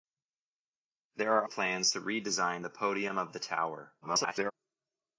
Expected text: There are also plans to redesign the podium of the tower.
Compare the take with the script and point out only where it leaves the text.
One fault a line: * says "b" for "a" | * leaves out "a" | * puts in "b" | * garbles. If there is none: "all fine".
* leaves out "also"
* garbles